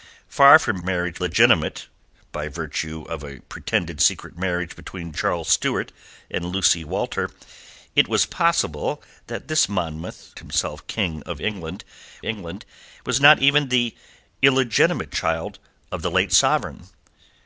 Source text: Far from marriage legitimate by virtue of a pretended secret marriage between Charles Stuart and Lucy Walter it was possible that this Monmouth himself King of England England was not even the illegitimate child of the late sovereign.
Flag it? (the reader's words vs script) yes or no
no